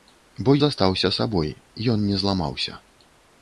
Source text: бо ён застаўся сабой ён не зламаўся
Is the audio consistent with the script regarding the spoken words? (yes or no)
no